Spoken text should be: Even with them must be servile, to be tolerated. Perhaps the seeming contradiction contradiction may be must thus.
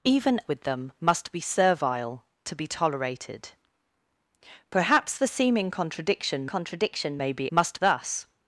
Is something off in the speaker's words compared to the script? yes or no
no